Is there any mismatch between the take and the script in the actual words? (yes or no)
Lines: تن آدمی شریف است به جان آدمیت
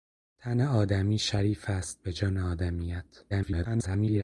yes